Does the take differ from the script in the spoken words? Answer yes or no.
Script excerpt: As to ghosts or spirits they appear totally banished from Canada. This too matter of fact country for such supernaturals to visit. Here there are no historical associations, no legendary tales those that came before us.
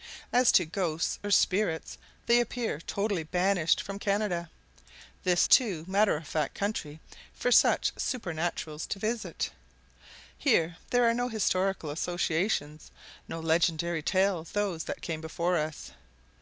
no